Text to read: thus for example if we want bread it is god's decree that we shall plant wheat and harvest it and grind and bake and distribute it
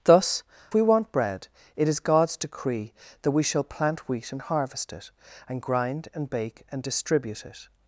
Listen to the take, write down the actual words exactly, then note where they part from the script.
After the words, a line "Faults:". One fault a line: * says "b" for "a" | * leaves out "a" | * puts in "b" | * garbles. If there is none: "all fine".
thus we want bread it is god's decree that we shall plant wheat and harvest it and grind and bake and distribute it
Faults:
* leaves out "for example if"